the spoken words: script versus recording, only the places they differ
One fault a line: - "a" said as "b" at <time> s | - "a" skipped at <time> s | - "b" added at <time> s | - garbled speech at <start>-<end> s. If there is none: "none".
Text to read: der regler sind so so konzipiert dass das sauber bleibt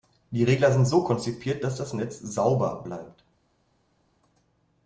- "der" said as "die" at 0.3 s
- "so" skipped at 1.0 s
- "netz" added at 1.9 s